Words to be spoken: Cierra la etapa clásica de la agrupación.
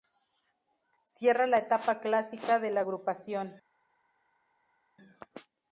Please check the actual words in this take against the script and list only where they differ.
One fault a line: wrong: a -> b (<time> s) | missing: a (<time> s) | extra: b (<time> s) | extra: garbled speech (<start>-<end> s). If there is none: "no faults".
no faults